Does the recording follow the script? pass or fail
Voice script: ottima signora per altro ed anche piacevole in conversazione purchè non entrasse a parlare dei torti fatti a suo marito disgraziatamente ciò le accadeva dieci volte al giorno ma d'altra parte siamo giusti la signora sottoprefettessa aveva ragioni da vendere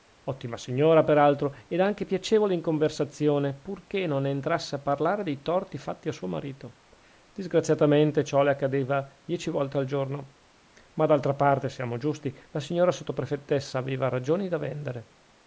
pass